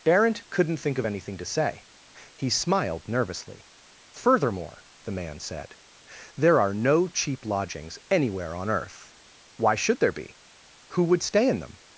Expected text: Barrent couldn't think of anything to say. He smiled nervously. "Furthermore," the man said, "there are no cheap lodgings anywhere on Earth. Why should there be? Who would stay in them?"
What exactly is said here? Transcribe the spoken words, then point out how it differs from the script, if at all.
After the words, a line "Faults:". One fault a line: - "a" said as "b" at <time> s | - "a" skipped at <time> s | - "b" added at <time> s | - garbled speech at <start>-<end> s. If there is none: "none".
Barrent couldn't think of anything to say. He smiled nervously. "Furthermore," the man said, "there are no cheap lodgings anywhere on Earth. Why should there be? Who would stay in them?"
Faults:
none